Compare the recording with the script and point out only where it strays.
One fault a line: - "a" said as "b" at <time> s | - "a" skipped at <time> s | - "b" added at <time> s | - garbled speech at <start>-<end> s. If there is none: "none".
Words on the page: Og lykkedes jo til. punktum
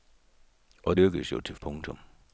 none